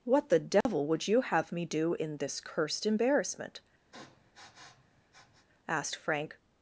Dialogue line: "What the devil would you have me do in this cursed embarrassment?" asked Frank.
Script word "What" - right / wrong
right